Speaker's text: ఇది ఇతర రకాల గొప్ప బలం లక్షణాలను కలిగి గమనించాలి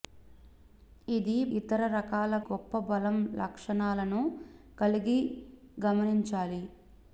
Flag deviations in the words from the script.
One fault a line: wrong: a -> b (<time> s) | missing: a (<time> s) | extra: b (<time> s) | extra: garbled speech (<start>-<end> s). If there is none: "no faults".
no faults